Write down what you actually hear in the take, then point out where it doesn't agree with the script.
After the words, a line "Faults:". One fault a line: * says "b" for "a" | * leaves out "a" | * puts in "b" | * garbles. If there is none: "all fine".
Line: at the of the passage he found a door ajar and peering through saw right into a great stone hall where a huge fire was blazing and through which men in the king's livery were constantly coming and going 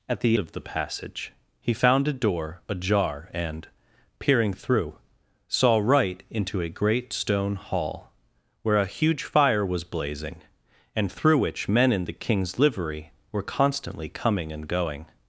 at the of the passage he found a door ajar and peering through saw right into a great stone hall where a huge fire was blazing and through which men in the king's livery were constantly coming and going
Faults:
all fine